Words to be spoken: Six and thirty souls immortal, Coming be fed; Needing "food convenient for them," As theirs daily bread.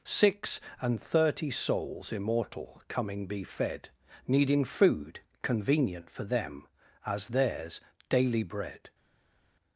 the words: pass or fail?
pass